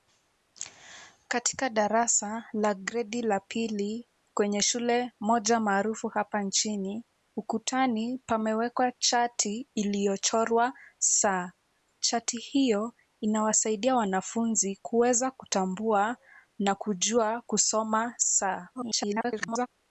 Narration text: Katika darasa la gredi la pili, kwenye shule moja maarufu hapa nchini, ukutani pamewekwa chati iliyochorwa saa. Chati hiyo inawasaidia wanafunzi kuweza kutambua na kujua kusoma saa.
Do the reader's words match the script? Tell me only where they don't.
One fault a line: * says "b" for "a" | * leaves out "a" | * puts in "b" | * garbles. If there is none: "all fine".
* garbles